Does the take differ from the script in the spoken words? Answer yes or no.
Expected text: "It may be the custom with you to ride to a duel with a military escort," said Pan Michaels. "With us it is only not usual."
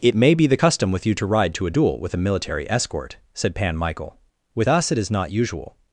yes